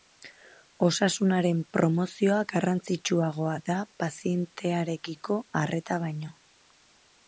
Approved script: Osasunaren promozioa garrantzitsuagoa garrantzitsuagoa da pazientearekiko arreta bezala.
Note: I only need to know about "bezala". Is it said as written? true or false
false